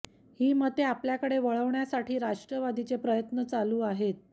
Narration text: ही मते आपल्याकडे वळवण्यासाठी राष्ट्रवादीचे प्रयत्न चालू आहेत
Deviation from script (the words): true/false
false